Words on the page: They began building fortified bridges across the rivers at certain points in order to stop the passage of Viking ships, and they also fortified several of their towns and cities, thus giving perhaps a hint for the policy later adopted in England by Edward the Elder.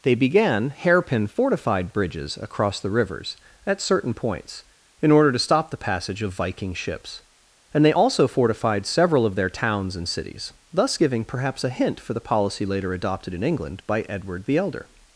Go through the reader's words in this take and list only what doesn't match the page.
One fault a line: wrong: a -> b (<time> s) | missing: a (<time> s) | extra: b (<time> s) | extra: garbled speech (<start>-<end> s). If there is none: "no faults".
wrong: building -> hairpin (0.7 s)